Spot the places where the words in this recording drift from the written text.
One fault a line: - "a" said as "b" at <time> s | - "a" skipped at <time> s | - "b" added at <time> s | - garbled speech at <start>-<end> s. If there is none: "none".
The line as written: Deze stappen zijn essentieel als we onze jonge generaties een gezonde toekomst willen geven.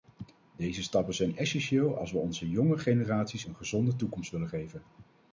none